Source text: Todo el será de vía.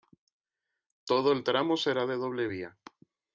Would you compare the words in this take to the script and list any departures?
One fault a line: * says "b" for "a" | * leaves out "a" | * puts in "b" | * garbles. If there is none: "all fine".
* puts in "tramo"
* puts in "doble"